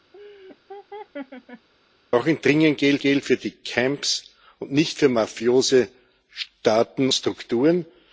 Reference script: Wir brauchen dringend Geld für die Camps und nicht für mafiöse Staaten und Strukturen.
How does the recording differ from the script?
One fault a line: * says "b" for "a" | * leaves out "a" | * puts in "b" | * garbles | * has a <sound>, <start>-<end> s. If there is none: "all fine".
* has a laugh, 0.1-1.7 s
* puts in "Geld"
* leaves out "und"